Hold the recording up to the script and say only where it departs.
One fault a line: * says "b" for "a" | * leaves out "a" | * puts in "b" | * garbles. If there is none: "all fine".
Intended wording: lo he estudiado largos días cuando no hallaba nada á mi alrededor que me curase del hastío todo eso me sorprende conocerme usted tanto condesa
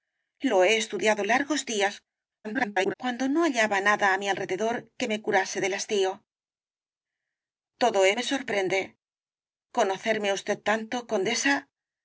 * garbles
* leaves out "eso"